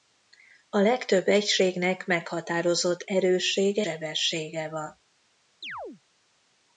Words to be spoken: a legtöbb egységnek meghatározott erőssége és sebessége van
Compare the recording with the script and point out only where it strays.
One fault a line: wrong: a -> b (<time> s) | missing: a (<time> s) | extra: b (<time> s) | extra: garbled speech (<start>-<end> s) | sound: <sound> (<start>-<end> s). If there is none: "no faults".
missing: és (3.9 s)
sound: chirp (5.6-6.0 s)